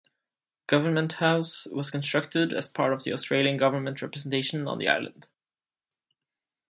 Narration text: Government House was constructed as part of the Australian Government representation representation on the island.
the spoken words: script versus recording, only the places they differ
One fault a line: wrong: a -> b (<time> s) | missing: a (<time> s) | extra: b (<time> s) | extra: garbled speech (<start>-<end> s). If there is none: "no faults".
missing: representation (4.7 s)